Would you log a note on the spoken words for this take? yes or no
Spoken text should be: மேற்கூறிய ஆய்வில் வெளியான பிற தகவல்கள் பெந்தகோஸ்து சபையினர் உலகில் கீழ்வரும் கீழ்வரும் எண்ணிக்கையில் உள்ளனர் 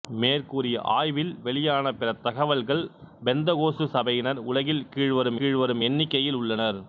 no